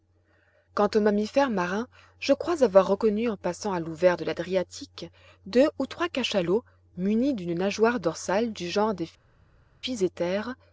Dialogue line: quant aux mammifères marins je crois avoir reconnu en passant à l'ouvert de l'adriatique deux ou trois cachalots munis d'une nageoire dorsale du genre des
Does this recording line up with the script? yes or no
yes